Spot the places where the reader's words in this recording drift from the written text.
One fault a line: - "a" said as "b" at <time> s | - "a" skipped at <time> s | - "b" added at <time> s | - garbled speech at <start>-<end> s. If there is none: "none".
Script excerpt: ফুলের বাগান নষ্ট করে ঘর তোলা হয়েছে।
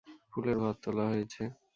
- "বাগান নষ্ট করে" skipped at 0.6 s